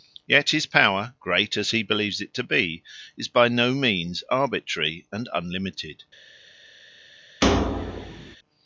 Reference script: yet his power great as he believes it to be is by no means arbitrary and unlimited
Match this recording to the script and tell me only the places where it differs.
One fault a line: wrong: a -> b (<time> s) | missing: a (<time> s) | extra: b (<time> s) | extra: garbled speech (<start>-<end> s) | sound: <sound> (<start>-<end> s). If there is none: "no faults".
sound: thud (7.4-8.4 s)